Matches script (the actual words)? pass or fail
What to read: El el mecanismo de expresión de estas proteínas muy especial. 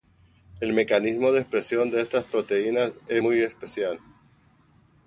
fail